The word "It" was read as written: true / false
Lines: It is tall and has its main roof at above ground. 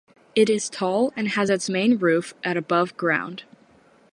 true